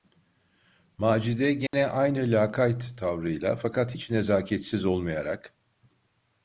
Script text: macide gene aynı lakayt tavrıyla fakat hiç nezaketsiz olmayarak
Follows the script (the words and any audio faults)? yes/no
no